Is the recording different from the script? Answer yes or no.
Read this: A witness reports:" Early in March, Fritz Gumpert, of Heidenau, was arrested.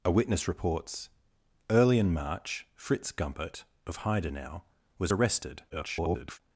yes